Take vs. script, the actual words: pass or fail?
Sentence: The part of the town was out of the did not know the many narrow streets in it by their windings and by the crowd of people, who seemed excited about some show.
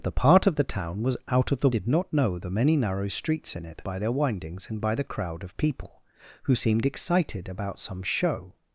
pass